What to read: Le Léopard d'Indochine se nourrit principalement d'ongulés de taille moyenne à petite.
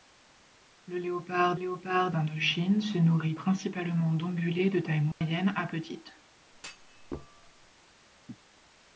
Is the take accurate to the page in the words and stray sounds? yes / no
no